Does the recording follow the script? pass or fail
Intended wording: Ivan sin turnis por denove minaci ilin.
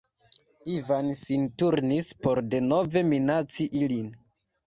pass